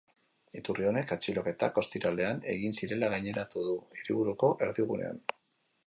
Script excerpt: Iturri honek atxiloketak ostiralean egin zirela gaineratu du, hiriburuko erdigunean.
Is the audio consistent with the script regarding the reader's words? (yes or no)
yes